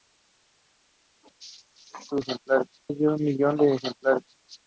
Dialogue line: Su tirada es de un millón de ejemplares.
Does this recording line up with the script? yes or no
no